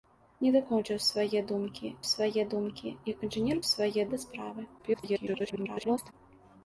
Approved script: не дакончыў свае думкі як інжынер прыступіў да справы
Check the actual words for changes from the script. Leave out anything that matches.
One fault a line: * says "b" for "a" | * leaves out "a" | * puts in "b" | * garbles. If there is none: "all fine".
* puts in "свае думкі"
* says "свае" for "прыступіў"
* garbles